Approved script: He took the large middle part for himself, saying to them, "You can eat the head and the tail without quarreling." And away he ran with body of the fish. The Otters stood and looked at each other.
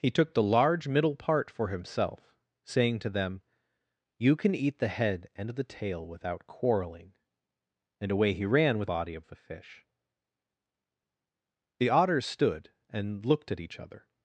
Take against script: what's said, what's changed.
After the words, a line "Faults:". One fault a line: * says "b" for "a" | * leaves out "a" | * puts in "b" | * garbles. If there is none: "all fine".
He took the large middle part for himself, saying to them, "You can eat the head and the tail without quarreling." And away he ran with body of the fish. The Otters stood and looked at each other.
Faults:
all fine